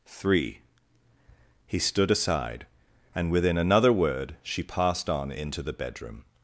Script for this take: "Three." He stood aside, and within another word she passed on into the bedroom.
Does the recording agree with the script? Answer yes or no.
yes